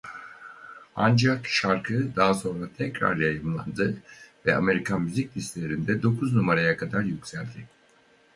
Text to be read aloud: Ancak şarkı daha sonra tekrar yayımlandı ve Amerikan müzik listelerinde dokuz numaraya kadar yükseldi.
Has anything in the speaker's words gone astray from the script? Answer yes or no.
no